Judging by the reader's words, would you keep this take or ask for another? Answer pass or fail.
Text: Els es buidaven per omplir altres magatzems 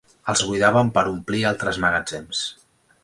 pass